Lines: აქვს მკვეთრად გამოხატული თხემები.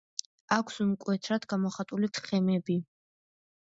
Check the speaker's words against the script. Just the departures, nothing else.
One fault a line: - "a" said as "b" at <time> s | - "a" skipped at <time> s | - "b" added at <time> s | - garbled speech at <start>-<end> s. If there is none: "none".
none